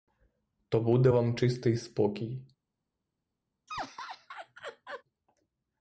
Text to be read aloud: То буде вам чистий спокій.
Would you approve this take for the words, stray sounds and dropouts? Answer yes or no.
no